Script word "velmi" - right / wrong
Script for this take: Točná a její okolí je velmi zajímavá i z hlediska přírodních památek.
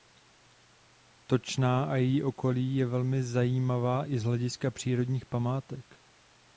right